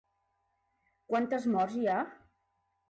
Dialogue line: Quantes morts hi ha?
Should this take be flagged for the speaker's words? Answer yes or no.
no